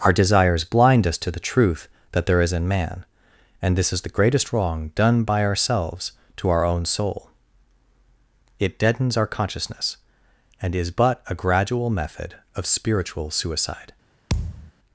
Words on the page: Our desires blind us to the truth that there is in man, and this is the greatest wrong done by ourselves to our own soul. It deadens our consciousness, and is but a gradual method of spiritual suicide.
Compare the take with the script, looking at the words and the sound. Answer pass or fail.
fail